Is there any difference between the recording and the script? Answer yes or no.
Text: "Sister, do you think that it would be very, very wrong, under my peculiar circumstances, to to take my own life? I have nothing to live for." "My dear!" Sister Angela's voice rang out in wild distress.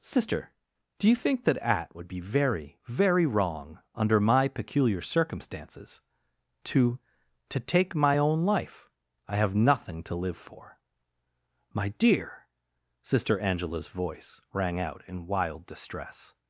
yes